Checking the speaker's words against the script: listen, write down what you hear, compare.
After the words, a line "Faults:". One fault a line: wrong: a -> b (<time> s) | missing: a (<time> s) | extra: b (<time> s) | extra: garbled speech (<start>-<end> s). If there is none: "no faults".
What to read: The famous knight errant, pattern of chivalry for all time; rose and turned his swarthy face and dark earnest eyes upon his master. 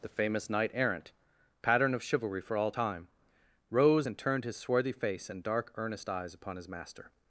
The famous knight errant, pattern of chivalry for all time; rose and turned his swarthy face and dark earnest eyes upon his master.
Faults:
no faults